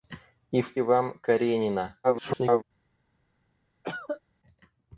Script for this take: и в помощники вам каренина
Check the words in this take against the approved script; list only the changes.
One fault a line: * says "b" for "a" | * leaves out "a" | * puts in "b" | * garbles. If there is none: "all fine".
* leaves out "помощники"
* garbles